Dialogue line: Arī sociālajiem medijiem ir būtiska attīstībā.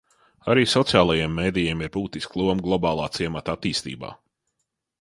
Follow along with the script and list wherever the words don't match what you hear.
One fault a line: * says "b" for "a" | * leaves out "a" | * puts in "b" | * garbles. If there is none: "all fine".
* puts in "loma globālā ciemata"